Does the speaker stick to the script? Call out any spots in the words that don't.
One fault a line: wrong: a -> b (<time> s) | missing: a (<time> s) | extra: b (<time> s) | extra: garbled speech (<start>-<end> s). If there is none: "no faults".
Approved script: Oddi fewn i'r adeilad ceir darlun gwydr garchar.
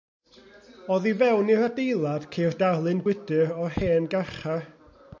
extra: o'r hen (3.7 s)